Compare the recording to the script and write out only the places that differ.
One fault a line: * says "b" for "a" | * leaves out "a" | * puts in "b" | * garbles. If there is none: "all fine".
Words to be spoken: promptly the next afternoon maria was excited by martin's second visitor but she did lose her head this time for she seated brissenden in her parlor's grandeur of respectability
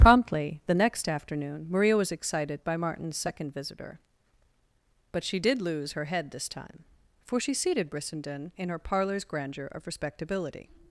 all fine